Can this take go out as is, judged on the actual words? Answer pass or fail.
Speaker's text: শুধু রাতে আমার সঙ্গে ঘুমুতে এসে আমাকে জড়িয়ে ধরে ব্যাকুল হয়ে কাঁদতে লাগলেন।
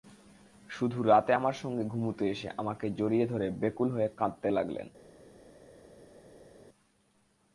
pass